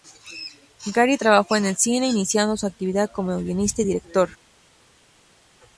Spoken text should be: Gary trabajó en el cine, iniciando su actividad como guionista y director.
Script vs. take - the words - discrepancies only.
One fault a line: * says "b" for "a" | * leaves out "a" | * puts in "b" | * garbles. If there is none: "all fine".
all fine